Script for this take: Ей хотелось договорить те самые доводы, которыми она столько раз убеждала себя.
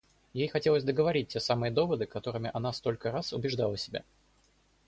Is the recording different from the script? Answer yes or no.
no